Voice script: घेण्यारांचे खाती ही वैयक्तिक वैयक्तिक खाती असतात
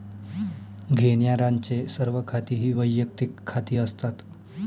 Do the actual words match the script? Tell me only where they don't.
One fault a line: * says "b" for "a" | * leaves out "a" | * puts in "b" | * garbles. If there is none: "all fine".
* puts in "सर्व"
* leaves out "वैयक्तिक"